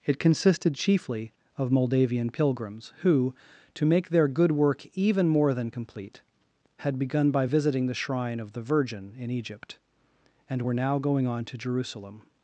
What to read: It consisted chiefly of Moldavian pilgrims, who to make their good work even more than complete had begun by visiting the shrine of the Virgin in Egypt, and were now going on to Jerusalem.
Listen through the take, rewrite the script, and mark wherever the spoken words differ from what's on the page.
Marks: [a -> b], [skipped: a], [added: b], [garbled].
It consisted chiefly of Moldavian pilgrims, who to make their good work even more than complete had begun by visiting the shrine of the Virgin in Egypt, and were now going on to Jerusalem.